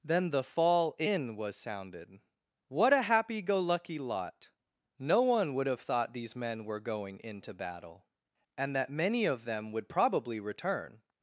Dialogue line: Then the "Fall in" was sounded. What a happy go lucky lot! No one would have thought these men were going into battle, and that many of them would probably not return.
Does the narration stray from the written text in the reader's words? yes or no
yes